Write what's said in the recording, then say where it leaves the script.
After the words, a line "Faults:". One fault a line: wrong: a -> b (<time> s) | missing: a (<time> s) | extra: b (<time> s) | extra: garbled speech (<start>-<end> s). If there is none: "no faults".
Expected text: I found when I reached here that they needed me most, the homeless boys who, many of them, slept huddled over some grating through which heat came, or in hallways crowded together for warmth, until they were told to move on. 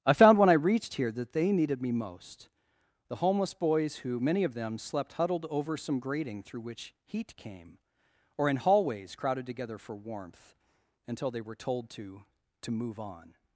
I found when I reached here that they needed me most, the homeless boys who, many of them, slept huddled over some grating through which heat came, or in hallways crowded together for warmth, until they were told to to move on.
Faults:
extra: to (12.6 s)